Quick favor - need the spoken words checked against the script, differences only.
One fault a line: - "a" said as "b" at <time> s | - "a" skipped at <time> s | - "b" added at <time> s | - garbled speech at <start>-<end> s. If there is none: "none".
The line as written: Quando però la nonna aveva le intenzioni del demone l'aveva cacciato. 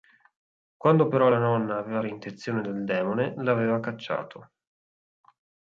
none